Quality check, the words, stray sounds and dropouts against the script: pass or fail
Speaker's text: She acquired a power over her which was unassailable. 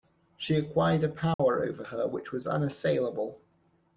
fail